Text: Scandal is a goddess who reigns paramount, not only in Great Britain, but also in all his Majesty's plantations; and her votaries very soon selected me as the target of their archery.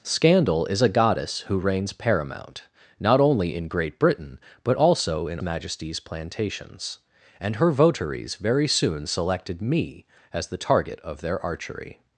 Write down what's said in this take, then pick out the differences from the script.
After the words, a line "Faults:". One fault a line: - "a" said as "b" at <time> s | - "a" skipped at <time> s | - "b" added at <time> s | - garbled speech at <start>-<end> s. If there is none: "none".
Scandal is a goddess who reigns paramount, not only in Great Britain, but also in Majesty's plantations; and her votaries very soon selected me as the target of their archery.
Faults:
- "all his" skipped at 5.4 s